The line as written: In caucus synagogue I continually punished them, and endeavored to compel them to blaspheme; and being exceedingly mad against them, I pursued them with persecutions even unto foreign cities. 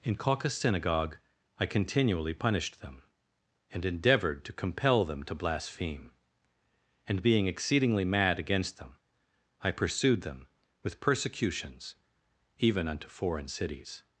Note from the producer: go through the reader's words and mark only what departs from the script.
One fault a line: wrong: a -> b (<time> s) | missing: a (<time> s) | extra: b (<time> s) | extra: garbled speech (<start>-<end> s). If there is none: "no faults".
no faults